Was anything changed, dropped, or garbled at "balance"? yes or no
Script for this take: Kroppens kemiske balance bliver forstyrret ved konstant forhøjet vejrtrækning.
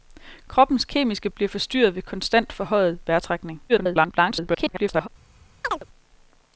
yes